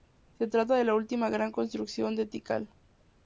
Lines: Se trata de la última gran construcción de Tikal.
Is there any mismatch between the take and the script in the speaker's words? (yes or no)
no